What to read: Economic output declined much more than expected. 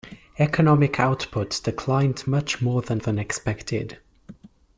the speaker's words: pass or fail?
fail